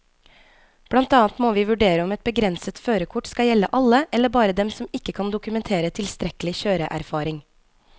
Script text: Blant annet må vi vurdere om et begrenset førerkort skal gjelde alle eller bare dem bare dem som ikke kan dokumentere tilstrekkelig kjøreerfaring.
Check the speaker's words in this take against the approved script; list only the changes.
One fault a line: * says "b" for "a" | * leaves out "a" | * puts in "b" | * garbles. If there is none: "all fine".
* leaves out "bare dem"